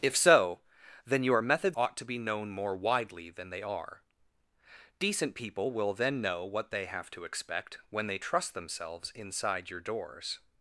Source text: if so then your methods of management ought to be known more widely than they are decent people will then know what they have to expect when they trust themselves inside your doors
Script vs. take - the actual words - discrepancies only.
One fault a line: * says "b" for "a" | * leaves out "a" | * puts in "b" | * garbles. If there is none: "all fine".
* leaves out "of management"